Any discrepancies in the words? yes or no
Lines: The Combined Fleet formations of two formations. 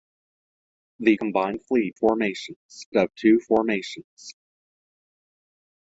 no